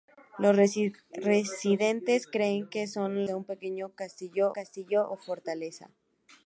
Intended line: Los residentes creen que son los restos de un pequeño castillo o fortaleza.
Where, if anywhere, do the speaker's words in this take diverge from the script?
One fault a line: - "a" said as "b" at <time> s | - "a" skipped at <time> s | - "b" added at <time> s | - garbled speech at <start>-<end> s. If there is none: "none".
- "los restos" skipped at 3.3 s
- "castillo" added at 4.5 s